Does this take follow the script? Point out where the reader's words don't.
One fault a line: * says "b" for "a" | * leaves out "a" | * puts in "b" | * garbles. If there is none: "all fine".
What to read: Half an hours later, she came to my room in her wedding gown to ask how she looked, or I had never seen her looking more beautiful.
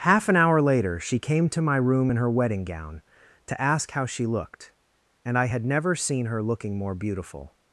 * says "hour" for "hours"
* says "and" for "or"